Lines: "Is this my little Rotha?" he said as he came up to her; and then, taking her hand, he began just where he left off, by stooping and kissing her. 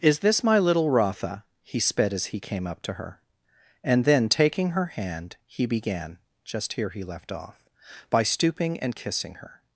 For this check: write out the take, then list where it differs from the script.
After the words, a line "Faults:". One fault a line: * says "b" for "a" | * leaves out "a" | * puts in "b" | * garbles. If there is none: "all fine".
"Is this my little Rotha?" he sped as he came up to her; and then, taking her hand, he began just here he left off, by stooping and kissing her.
Faults:
* says "sped" for "said"
* says "here" for "where"